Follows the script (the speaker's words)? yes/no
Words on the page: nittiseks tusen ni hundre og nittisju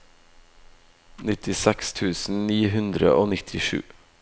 yes